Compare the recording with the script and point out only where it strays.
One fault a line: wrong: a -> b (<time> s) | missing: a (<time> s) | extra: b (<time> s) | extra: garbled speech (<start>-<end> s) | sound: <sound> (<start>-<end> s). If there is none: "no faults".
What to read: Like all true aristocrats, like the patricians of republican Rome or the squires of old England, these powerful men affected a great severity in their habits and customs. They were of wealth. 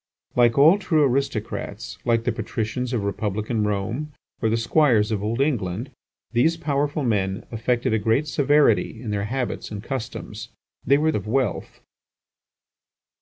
no faults